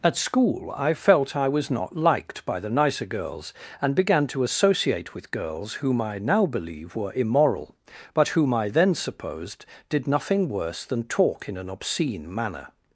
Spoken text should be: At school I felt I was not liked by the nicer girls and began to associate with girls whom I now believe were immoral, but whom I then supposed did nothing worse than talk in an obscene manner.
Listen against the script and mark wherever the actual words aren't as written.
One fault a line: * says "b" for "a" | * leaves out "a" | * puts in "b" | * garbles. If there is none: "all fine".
all fine